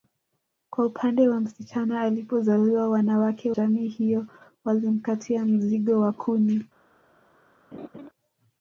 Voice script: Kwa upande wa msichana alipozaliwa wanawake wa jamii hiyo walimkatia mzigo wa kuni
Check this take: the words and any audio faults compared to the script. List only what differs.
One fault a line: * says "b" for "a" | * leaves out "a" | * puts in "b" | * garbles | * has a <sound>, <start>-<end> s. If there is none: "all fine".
* leaves out "wa"
* has a laugh, 7.7-8.1 s